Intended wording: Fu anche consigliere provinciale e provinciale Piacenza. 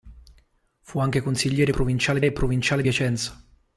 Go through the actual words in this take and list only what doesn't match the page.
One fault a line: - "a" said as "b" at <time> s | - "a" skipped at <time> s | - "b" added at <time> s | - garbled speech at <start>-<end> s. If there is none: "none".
none